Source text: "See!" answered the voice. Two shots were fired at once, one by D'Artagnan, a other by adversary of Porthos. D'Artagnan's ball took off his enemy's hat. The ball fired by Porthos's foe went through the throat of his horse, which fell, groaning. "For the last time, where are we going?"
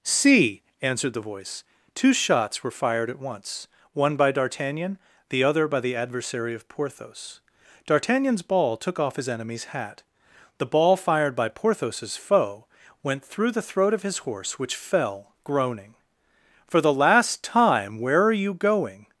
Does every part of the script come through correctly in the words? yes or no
no